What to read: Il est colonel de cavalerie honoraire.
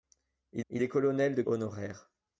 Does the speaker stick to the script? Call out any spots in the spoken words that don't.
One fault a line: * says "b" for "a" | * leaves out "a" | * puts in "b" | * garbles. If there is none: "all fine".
* puts in "il"
* leaves out "cavalerie"